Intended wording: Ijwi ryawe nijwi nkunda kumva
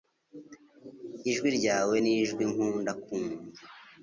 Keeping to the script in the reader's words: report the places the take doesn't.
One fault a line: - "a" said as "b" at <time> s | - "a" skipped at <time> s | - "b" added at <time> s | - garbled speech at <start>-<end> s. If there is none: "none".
none